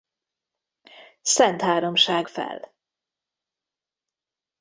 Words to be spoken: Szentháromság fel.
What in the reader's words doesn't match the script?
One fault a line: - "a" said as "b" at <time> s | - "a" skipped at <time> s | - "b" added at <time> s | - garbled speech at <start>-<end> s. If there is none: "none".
none